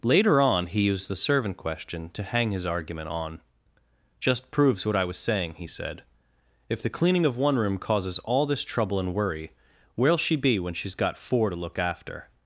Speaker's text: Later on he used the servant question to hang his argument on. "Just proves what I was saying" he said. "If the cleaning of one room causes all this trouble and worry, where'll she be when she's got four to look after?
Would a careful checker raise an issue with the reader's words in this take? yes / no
no